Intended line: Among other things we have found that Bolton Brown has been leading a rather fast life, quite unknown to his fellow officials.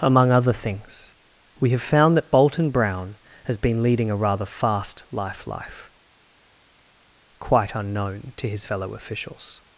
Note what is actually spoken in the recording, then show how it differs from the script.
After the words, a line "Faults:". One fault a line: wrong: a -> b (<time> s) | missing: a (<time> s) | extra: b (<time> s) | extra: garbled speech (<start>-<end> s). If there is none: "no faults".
Among other things we have found that Bolton Brown has been leading a rather fast life life, quite unknown to his fellow officials.
Faults:
extra: life (5.4 s)